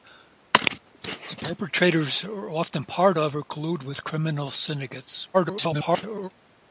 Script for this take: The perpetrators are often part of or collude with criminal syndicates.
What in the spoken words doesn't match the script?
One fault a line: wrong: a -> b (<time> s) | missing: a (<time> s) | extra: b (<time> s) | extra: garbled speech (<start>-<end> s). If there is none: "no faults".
extra: garbled speech (5.3-6.3 s)